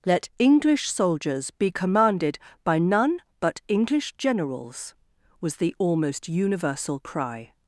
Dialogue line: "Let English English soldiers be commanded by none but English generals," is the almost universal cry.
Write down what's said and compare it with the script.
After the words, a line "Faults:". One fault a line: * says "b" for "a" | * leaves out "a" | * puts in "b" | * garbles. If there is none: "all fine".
"Let English soldiers be commanded by none but English generals," was the almost universal cry.
Faults:
* leaves out "English"
* says "was" for "is"